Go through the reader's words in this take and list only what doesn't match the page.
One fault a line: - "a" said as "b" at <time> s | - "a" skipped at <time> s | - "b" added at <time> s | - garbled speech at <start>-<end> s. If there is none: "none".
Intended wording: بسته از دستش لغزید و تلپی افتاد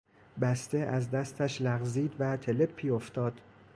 none